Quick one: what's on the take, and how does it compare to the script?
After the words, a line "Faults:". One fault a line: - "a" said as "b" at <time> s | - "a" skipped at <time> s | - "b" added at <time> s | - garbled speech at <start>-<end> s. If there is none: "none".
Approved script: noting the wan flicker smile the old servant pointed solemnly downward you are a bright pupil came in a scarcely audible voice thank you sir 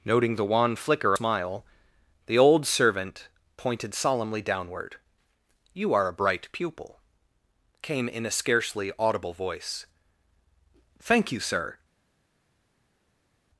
noting the wan flicker smile the old servant pointed solemnly downward you are a bright pupil came in a scarcely audible voice thank you sir
Faults:
none